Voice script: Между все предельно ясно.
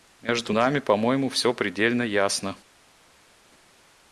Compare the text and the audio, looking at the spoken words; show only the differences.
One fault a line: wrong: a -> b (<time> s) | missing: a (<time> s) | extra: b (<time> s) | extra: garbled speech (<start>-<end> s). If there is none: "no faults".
extra: нами по моему (0.5 s)